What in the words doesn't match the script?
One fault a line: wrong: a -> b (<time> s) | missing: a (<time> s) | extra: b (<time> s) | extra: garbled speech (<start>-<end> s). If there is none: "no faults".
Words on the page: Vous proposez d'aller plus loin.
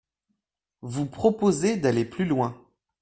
no faults